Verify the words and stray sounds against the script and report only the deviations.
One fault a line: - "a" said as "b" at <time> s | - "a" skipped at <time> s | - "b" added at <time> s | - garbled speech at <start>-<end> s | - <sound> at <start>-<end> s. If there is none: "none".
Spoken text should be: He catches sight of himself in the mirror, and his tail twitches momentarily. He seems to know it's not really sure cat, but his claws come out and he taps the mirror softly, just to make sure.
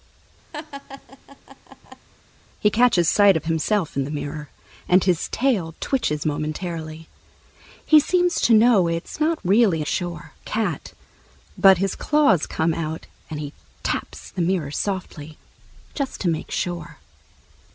- laugh at 0.5-2.1 s